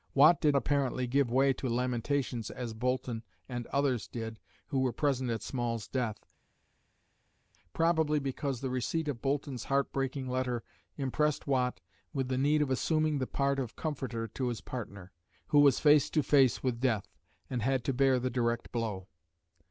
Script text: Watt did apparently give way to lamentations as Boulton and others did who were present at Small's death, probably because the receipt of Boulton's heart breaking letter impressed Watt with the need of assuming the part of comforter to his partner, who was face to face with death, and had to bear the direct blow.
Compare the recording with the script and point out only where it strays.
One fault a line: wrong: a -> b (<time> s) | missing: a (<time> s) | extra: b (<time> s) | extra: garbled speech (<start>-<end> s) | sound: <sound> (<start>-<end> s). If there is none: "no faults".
no faults